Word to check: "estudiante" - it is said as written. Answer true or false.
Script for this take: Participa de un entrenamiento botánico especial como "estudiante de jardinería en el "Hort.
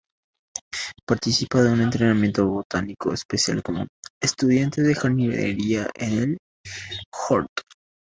true